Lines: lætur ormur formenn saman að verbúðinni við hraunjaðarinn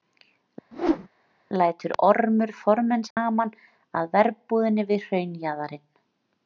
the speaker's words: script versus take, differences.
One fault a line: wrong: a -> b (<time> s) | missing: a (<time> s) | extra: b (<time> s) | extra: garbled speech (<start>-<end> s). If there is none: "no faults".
no faults